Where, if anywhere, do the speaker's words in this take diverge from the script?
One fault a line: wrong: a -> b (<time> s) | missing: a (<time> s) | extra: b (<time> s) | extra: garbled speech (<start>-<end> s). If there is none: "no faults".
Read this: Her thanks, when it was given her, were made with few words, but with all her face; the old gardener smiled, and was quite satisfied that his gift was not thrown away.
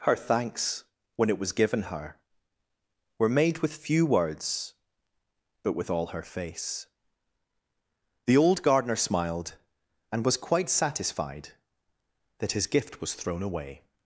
missing: not (13.1 s)